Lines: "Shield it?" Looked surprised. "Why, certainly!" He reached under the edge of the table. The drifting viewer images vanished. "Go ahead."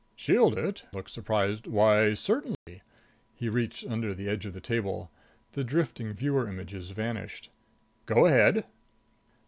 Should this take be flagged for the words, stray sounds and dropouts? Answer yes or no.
yes